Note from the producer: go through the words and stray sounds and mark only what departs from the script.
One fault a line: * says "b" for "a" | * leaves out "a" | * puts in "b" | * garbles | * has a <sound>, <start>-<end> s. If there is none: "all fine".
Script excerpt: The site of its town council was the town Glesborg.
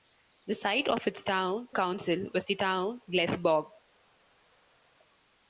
all fine